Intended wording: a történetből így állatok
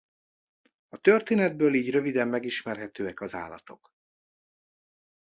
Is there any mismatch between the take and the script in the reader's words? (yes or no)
yes